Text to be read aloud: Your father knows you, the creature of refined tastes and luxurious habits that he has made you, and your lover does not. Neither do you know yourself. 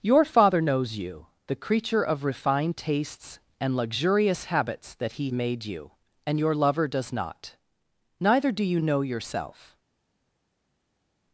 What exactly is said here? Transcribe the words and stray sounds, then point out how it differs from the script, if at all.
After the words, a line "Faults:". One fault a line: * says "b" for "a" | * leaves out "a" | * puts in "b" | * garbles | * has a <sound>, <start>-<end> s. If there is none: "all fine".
Your father knows you, the creature of refined tastes and luxurious habits that he made you, and your lover does not. Neither do you know yourself.
Faults:
* leaves out "has"